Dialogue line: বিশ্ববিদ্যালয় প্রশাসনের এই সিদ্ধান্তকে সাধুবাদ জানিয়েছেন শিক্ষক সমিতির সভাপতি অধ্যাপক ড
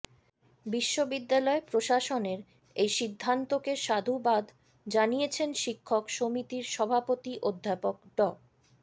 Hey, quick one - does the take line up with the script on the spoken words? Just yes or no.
yes